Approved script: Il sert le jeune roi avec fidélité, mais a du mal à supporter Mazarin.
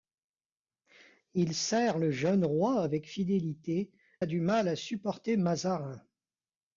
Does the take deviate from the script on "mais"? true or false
true